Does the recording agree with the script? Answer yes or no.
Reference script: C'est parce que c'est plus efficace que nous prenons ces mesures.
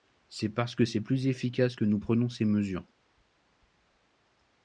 yes